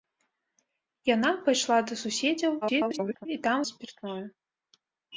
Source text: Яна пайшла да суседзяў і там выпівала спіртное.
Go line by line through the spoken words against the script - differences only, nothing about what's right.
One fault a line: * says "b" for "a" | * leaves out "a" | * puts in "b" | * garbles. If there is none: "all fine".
* garbles
* leaves out "выпівала"